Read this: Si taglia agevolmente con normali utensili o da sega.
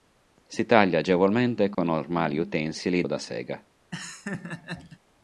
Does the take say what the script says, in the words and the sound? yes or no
no